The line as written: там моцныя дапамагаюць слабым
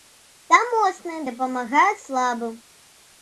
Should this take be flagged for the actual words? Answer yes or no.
no